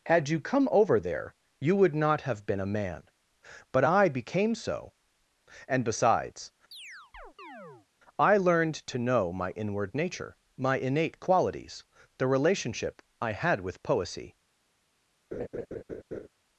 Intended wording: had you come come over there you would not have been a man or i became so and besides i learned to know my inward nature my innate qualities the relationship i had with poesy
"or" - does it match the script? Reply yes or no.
no